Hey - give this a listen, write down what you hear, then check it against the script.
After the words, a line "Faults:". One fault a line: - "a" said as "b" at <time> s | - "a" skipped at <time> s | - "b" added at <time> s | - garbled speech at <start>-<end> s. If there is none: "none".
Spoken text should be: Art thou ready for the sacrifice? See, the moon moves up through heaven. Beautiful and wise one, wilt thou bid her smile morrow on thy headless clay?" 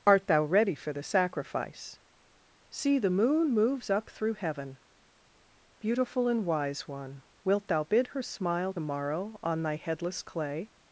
Art thou ready for the sacrifice? See, the moon moves up through heaven. Beautiful and wise one, wilt thou bid her smile morrow on thy headless clay?"
Faults:
none